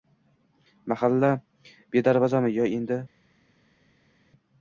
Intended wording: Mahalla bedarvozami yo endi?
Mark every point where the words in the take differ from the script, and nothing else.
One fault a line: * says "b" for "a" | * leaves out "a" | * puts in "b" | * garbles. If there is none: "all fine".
all fine